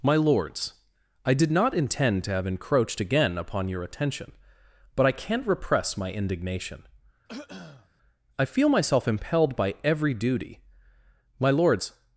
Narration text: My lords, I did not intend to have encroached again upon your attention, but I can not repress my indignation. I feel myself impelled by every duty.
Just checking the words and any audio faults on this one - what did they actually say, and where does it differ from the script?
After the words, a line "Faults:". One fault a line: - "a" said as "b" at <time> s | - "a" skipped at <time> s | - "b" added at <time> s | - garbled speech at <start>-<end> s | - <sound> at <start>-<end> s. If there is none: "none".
My lords, I did not intend to have encroached again upon your attention, but I can not repress my indignation. I feel myself impelled by every duty. My lords
Faults:
- throat clearing at 7.3-7.9 s
- "My lords" added at 11.4 s